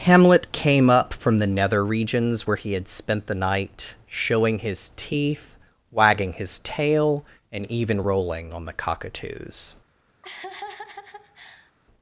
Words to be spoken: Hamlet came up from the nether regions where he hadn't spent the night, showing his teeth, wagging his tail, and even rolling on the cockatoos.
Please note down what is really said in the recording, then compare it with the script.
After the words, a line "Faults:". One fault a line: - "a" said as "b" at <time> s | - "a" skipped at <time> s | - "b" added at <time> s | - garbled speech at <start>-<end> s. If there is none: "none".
Hamlet came up from the nether regions where he had spent the night, showing his teeth, wagging his tail, and even rolling on the cockatoos.
Faults:
- "hadn't" said as "had" at 2.7 s